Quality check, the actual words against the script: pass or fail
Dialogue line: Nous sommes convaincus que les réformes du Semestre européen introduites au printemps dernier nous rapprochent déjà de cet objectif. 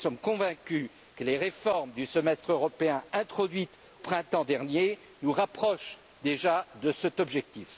fail